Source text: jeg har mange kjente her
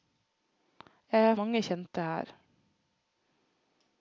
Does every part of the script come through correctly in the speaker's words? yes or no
yes